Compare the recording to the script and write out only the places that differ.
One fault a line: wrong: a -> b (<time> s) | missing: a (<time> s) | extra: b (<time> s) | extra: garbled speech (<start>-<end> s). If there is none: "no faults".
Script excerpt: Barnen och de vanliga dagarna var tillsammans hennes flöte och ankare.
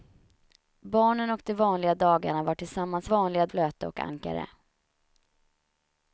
wrong: hennes -> vanliga (3.0 s)